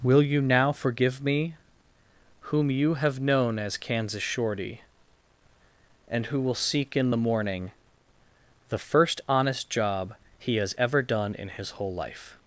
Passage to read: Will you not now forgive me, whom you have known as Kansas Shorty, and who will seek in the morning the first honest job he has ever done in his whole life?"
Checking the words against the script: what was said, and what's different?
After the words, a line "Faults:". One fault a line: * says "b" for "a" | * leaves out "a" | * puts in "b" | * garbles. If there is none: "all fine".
Will you now forgive me, whom you have known as Kansas Shorty, and who will seek in the morning the first honest job he has ever done in his whole life?"
Faults:
* leaves out "not"